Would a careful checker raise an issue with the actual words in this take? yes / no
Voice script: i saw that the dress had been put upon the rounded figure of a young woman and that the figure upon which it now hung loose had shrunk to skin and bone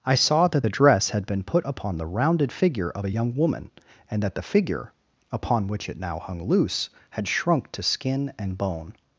no